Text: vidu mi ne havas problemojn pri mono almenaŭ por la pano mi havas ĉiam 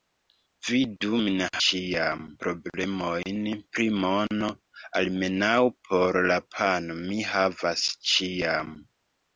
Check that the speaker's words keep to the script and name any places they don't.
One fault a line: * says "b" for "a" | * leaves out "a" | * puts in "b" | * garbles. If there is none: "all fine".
* says "ĉiam" for "havas"